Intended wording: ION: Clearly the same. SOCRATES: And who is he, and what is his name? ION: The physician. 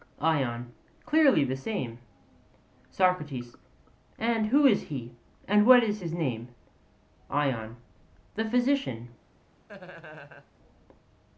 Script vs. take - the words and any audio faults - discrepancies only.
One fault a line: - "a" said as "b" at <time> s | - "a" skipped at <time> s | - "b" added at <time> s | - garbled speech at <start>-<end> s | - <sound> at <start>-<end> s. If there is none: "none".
- laugh at 9.7-10.5 s